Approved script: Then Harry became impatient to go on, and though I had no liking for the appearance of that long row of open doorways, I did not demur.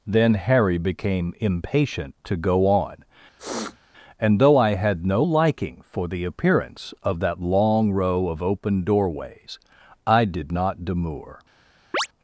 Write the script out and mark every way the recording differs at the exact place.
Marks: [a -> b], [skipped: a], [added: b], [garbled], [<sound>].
Then Harry became impatient to go on, [sniff] and though I had no liking for the appearance of that long row of open doorways, I did not demur. [chirp]